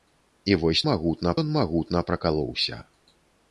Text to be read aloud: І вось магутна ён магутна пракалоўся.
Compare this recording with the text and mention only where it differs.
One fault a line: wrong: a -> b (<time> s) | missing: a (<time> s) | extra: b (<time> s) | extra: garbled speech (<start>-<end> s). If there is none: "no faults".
no faults